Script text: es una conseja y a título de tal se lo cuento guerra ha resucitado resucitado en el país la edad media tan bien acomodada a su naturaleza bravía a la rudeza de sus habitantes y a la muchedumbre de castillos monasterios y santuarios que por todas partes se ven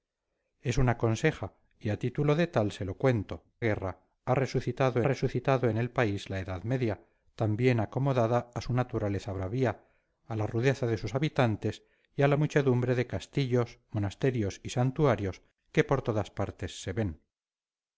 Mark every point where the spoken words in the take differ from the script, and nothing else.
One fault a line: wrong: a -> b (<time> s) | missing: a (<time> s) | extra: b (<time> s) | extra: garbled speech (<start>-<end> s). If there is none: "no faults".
no faults